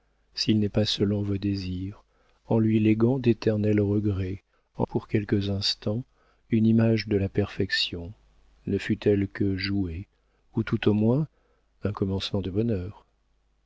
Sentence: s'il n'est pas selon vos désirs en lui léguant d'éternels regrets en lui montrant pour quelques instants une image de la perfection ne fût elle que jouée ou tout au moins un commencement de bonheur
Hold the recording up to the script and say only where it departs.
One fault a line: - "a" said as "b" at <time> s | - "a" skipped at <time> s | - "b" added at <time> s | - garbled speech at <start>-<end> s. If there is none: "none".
- "lui montrant" skipped at 4.9 s